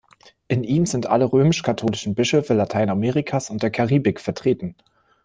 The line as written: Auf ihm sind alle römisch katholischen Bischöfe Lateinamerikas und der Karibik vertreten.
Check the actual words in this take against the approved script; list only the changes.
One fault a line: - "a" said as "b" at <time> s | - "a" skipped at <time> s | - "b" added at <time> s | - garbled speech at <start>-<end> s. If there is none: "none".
- "Auf" said as "In" at 0.5 s